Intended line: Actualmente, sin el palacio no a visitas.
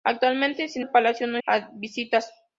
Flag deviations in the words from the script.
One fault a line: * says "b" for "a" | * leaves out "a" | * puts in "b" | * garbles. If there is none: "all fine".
all fine